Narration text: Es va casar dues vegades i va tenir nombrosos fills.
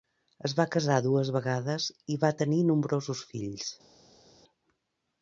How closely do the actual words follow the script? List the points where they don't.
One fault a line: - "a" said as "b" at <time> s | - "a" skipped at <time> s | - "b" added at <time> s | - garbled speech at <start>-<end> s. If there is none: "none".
none